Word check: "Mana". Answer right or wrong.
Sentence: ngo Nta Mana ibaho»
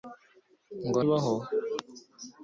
wrong